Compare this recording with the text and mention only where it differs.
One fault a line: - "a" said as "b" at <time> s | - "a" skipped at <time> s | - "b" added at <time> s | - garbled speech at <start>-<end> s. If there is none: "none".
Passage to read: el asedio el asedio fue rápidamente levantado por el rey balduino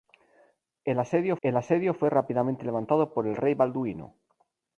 none